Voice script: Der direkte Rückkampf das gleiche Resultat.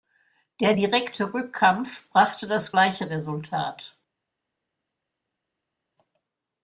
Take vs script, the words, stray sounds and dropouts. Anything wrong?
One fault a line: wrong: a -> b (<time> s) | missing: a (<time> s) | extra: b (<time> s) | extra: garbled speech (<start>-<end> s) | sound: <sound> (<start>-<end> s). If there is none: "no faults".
extra: brachte (2.1 s)